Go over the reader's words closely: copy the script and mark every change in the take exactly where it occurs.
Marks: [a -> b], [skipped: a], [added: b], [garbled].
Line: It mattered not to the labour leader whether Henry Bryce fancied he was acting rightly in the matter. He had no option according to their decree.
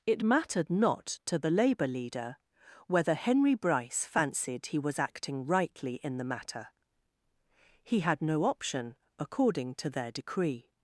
It mattered not to the labour leader whether Henry Bryce fancied he was acting rightly in the matter. He had no option according to their decree.